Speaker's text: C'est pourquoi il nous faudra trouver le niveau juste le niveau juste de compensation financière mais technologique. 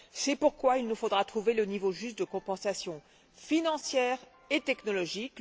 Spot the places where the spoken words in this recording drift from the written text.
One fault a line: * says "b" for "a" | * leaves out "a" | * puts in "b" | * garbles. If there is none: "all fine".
* leaves out "le niveau juste"
* says "et" for "mais"